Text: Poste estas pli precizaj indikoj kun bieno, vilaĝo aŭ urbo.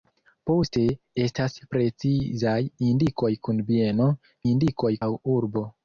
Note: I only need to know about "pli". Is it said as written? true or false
false